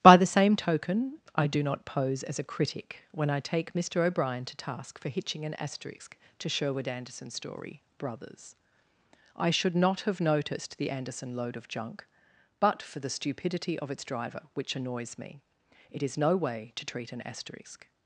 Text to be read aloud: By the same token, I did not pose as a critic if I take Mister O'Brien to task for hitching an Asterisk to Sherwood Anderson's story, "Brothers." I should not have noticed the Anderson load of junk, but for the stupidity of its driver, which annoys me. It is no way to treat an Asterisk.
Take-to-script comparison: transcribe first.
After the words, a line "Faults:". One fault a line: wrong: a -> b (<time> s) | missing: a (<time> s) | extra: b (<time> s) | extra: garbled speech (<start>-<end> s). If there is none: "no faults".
By the same token, I do not pose as a critic when I take Mister O'Brien to task for hitching an Asterisk to Sherwood Anderson's story, "Brothers." I should not have noticed the Anderson load of junk, but for the stupidity of its driver, which annoys me. It is no way to treat an Asterisk.
Faults:
wrong: did -> do (1.4 s)
wrong: if -> when (3.1 s)